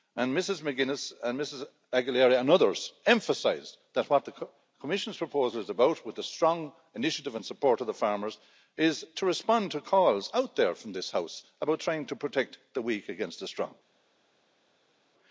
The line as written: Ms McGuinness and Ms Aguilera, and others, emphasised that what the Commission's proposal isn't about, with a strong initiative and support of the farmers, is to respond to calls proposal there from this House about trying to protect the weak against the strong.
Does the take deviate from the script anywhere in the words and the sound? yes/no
yes